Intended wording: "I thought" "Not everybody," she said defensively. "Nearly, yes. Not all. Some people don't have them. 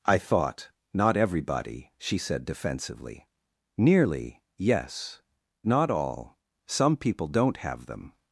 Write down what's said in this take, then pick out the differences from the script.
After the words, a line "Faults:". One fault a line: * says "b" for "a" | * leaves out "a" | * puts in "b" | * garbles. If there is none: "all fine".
"I thought" "Not everybody," she said defensively. "Nearly, yes. Not all. Some people don't have them.
Faults:
all fine